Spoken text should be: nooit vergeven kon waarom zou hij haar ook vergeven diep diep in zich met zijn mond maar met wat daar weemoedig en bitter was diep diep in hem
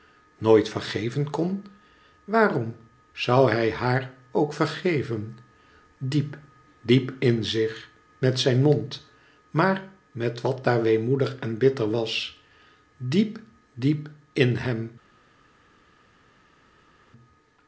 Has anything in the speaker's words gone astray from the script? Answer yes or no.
no